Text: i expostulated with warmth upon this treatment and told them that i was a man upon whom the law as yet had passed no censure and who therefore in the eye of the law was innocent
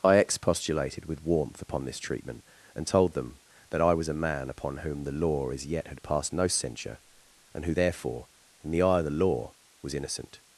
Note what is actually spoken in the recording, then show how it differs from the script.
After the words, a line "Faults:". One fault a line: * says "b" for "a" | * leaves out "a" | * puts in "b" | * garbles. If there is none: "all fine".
i expostulated with warmth upon this treatment and told them that i was a man upon whom the law as yet had passed no censure and who therefore in the eye of the law was innocent
Faults:
all fine